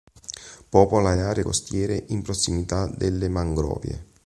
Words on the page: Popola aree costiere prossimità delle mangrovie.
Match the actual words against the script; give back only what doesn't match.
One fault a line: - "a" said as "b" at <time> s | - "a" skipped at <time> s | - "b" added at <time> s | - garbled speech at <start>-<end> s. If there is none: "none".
- "le" added at 1.1 s
- "in" added at 2.1 s